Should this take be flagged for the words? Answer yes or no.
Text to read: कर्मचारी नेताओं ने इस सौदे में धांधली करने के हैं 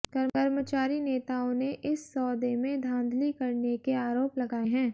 yes